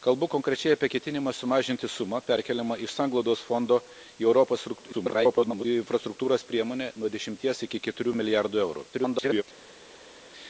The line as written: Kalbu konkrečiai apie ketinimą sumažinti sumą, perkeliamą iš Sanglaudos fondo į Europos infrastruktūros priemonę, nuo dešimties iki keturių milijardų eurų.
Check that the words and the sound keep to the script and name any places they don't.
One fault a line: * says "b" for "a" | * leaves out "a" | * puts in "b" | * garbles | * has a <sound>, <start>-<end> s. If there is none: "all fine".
* garbles
* garbles